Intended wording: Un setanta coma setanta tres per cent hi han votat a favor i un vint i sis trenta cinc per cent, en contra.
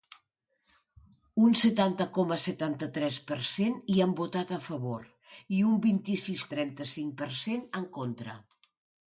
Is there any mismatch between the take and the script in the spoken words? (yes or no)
no